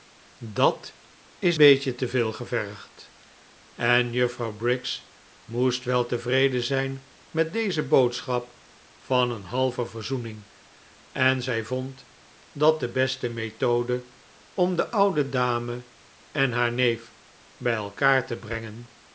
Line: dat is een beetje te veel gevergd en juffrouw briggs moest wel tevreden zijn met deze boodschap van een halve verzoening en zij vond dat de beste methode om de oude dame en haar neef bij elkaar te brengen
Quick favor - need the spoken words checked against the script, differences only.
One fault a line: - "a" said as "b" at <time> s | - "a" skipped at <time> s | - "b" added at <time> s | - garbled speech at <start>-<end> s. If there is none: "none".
- "een" skipped at 1.6 s